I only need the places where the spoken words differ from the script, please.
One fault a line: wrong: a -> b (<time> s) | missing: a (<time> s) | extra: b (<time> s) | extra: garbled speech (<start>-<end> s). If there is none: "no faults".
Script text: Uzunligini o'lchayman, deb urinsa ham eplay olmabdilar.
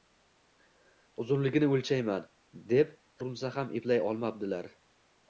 no faults